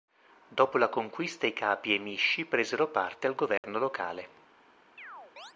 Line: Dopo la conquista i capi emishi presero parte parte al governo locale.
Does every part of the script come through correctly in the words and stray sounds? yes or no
no